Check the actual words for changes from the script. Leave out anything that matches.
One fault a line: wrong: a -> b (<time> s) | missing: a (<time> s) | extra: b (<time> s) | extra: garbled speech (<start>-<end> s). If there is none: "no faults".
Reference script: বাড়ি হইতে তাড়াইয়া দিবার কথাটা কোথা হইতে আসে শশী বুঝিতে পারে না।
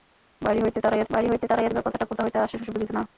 extra: বাড়ি হইতে তাড়াইয়া (1.1 s)
missing: পারে (2.9 s)